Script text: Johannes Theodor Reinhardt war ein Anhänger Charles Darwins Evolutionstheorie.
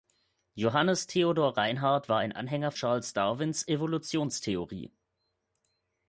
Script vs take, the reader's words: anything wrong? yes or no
no